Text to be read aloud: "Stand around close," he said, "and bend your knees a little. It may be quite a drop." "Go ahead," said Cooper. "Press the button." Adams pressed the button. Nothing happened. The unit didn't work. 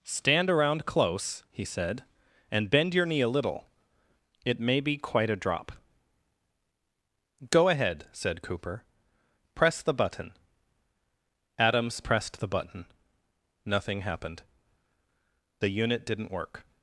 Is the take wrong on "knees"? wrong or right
wrong